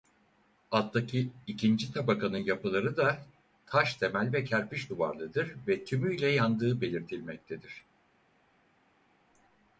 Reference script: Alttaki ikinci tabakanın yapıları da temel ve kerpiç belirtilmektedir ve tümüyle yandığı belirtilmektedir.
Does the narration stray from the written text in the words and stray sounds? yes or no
yes